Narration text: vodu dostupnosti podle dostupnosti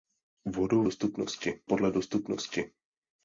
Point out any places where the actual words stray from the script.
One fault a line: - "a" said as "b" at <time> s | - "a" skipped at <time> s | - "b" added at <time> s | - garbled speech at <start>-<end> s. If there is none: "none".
none